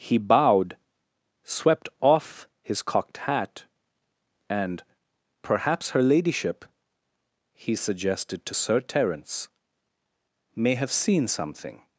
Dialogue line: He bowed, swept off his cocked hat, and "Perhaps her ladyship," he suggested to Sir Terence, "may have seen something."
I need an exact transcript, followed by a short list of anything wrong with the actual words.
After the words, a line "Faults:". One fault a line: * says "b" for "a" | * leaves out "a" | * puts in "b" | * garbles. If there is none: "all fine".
He bowed, swept off his cocked hat, and "Perhaps her ladyship," he suggested to Sir Terence, "may have seen something."
Faults:
all fine